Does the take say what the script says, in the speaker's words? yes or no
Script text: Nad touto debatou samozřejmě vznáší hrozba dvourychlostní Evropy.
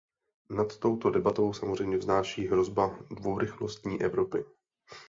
yes